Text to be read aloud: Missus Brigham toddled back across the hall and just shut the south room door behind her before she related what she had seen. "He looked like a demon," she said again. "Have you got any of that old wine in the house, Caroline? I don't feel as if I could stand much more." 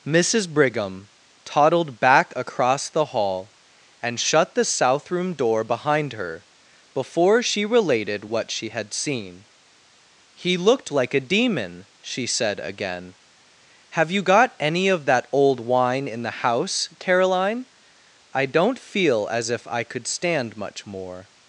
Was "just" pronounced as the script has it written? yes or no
no